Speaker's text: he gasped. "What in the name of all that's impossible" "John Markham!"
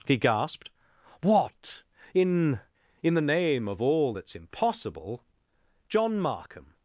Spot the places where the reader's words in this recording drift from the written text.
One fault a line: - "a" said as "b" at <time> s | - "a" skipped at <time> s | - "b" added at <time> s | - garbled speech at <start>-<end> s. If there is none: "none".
- "in" added at 3.0 s